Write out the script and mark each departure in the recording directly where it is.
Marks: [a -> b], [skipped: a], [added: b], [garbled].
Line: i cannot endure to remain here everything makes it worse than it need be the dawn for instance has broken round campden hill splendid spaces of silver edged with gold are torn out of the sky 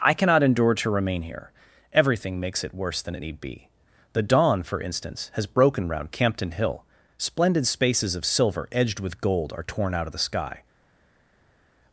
i cannot endure to remain here everything makes it worse than it need be the dawn for instance has broken round campden hill splendid spaces of silver edged with gold are torn out of the sky